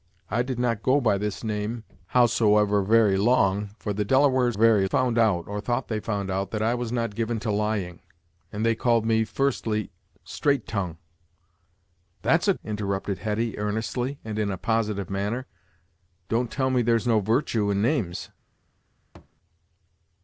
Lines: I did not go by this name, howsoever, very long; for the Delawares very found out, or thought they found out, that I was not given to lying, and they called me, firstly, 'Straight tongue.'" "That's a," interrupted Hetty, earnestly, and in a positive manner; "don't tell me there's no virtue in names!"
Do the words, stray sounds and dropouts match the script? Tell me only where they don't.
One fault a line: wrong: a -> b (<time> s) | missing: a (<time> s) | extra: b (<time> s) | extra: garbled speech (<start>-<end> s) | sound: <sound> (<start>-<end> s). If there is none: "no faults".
sound: thud (19.2-19.4 s)